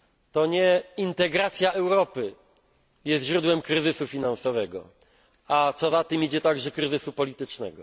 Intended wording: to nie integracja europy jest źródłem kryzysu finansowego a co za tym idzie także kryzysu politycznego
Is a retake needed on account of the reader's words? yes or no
no